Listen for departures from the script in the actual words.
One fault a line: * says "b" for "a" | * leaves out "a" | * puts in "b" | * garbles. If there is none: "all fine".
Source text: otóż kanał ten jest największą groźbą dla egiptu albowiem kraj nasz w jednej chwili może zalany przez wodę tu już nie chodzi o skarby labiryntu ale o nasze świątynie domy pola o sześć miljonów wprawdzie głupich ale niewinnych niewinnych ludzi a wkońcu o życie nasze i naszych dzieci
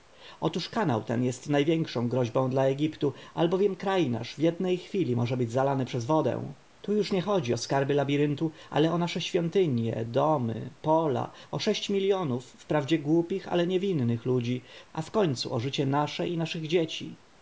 * puts in "być"
* leaves out "niewinnych"